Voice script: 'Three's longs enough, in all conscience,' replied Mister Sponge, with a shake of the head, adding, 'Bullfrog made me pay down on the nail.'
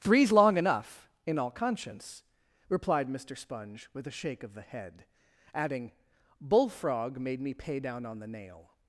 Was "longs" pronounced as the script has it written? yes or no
no